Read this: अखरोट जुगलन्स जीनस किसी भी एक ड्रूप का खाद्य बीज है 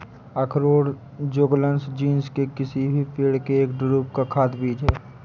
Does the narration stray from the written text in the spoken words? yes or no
yes